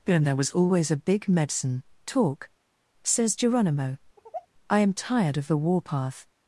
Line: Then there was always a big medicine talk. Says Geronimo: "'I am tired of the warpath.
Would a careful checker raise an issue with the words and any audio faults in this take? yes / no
yes